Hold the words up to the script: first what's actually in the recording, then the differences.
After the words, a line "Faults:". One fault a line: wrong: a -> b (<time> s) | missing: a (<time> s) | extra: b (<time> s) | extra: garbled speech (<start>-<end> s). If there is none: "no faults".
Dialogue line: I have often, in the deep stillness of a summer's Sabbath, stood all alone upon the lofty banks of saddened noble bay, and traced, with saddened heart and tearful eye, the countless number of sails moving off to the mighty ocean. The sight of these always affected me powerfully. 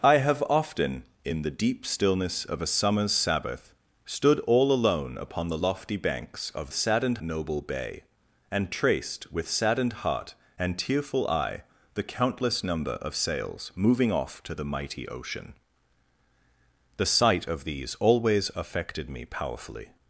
I have often, in the deep stillness of a summer's Sabbath, stood all alone upon the lofty banks of saddened noble bay, and traced, with saddened heart and tearful eye, the countless number of sails moving off to the mighty ocean. The sight of these always affected me powerfully.
Faults:
no faults